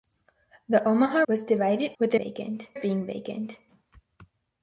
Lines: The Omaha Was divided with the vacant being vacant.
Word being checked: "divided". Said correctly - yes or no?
yes